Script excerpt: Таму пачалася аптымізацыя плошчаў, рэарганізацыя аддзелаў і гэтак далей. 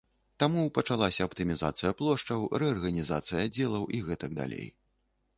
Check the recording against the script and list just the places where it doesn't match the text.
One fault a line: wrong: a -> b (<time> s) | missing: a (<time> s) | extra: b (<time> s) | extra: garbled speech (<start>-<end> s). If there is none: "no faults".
no faults